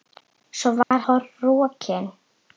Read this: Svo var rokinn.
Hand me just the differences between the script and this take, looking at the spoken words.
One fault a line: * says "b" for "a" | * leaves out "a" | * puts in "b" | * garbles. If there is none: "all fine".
all fine